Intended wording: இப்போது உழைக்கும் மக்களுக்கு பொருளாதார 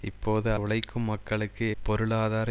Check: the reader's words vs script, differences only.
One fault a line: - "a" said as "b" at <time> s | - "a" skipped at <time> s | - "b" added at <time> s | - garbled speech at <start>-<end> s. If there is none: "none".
none